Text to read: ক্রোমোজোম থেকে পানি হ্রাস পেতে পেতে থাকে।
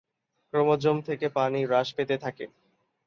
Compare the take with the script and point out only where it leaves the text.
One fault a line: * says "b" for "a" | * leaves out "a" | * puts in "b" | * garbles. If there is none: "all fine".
* leaves out "পেতে"